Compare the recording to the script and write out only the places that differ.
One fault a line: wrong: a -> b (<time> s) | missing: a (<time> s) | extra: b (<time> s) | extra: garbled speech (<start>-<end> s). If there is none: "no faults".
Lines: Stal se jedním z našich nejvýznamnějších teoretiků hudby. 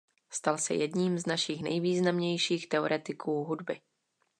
no faults